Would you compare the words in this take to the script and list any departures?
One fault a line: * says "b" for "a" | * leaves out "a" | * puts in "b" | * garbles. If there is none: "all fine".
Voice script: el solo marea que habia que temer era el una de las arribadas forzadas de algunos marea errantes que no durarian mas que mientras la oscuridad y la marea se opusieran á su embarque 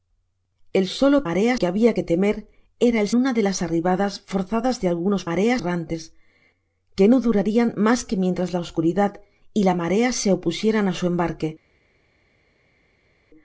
all fine